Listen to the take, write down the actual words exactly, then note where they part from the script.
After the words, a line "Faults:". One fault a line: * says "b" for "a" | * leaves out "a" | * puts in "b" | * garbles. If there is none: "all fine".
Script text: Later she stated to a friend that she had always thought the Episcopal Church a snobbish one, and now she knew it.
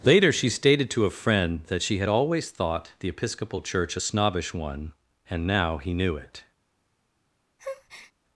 Later she stated to a friend that she had always thought the Episcopal Church a snobbish one, and now he knew it.
Faults:
* says "he" for "she"